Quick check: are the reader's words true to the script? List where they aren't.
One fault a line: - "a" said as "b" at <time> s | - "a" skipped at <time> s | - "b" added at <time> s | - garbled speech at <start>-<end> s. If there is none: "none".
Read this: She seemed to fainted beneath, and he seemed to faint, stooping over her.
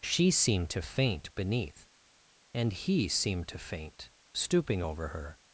- "fainted" said as "faint" at 0.8 s